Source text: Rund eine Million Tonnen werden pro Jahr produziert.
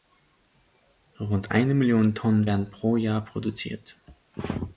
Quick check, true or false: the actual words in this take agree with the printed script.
true